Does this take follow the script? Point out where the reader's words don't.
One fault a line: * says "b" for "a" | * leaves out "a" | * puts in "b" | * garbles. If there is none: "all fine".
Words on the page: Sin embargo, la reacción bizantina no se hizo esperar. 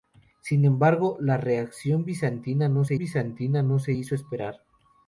* puts in "bizantina no se"